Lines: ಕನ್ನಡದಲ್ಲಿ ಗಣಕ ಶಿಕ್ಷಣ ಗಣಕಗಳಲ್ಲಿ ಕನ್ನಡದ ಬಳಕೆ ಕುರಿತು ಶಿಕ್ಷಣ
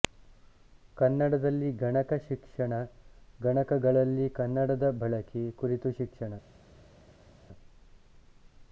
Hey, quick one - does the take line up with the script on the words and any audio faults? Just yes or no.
yes